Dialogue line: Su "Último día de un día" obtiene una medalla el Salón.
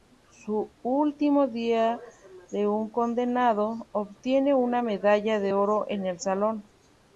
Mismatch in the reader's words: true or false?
true